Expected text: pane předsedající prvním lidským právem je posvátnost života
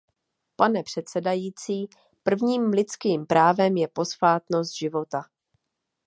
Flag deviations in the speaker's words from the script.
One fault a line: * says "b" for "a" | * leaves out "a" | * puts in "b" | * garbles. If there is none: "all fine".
all fine